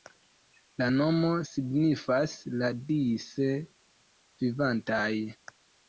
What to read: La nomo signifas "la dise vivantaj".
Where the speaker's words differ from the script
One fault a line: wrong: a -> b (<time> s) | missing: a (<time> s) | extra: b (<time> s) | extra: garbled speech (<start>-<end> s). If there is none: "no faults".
no faults